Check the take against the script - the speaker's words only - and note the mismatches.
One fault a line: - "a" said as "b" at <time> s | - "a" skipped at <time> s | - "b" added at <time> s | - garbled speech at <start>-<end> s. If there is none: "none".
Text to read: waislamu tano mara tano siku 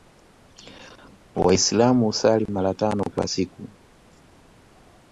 - "tano" said as "husali" at 2.0 s
- "kwa" added at 3.1 s